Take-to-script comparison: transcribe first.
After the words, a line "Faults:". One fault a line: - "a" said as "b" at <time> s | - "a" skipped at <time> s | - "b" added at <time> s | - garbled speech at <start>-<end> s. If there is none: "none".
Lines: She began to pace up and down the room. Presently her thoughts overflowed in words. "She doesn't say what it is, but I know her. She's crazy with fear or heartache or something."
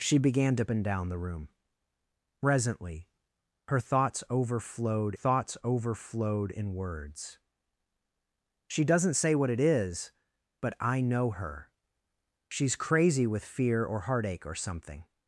She began to and down the room. Presently her thoughts overflowed thoughts overflowed in words. "She doesn't say what it is, but I know her. She's crazy with fear or heartache or something."
Faults:
- "pace up" skipped at 0.7 s
- "thoughts overflowed" added at 5.1 s